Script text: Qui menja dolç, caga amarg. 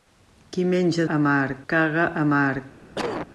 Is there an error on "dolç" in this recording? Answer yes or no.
yes